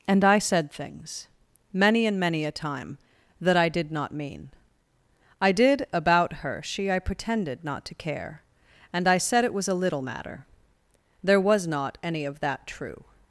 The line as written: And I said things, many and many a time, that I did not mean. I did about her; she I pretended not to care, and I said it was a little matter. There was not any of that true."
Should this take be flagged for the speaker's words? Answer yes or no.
no